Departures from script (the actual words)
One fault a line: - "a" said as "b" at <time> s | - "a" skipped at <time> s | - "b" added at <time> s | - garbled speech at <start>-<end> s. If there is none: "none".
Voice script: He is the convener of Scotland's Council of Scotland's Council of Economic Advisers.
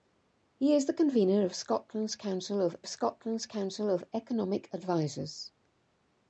none